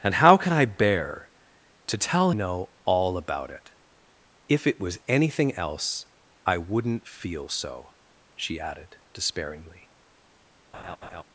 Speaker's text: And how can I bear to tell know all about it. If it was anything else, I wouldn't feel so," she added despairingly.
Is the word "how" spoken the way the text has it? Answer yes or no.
yes